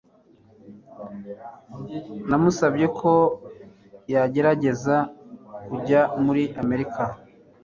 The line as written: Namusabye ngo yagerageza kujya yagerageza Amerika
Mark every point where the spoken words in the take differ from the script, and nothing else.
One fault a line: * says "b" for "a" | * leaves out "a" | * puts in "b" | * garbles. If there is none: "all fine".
* says "ko" for "ngo"
* says "muri" for "yagerageza"